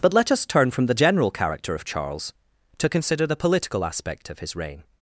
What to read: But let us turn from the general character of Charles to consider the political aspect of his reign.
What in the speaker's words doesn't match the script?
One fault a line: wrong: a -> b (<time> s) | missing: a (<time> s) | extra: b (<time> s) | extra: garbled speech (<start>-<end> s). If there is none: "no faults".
no faults